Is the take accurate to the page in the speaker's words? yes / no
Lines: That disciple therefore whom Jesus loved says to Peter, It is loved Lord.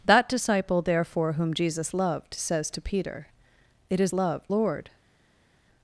yes